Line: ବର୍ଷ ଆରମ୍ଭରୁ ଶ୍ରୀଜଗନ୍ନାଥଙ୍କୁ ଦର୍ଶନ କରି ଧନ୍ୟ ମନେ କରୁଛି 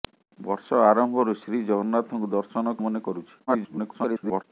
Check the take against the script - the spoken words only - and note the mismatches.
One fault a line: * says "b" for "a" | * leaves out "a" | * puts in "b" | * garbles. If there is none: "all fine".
* leaves out "କରି ଧନ୍ୟ"
* garbles